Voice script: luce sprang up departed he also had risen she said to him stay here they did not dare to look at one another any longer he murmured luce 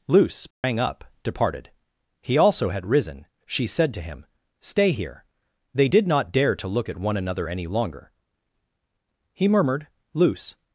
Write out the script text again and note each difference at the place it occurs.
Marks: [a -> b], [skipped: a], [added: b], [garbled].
luce sprang up departed he also had risen she said to him stay here they did not dare to look at one another any longer he murmured luce